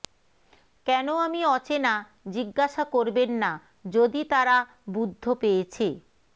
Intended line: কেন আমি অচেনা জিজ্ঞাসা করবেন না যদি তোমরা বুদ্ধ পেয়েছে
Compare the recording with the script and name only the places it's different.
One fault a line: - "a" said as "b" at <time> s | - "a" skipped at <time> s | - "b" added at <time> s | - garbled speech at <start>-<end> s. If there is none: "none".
- "তোমরা" said as "তারা" at 4.3 s